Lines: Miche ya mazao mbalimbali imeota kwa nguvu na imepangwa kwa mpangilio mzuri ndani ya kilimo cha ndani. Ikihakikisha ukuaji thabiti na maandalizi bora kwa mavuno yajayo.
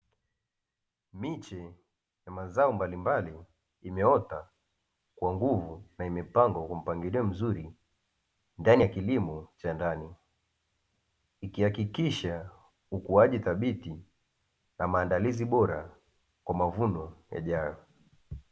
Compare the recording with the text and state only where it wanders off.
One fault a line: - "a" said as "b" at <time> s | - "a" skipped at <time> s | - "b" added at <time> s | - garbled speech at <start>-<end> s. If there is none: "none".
none